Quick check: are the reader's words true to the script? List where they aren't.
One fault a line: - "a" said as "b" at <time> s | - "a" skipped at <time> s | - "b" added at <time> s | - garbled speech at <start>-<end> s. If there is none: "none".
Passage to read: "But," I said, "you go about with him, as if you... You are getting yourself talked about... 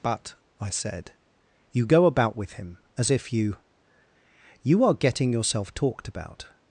none